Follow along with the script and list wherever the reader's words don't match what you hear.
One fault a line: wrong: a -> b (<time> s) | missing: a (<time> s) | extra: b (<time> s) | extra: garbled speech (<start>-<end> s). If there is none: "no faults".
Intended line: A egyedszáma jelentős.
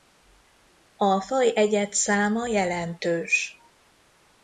extra: faj (1.2 s)